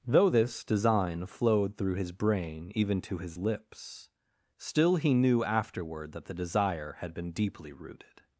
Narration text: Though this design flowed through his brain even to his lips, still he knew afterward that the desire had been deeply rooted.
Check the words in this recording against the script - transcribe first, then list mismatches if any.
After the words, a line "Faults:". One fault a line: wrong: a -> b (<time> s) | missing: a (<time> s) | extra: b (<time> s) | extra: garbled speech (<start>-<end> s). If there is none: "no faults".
Though this design flowed through his brain even to his lips, still he knew afterward that the desire had been deeply rooted.
Faults:
no faults